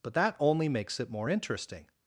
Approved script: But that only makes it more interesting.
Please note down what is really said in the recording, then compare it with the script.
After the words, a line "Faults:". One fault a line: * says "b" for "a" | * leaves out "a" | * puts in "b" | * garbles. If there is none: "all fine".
But that only makes it more interesting.
Faults:
all fine